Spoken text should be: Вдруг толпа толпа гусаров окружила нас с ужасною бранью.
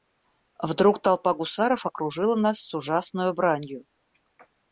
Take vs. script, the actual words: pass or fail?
fail